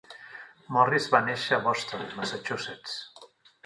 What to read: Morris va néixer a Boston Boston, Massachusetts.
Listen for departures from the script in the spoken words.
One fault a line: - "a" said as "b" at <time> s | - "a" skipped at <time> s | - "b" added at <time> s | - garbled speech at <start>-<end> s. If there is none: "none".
- "Boston" skipped at 2.0 s